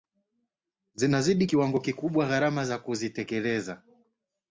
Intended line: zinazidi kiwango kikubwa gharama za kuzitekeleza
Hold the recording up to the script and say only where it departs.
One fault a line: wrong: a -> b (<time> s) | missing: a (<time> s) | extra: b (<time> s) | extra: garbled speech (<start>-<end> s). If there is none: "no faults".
no faults